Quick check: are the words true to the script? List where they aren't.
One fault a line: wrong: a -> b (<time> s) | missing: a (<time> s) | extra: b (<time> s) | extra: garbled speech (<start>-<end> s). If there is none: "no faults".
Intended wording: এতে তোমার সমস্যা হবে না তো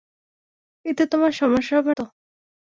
missing: না (1.9 s)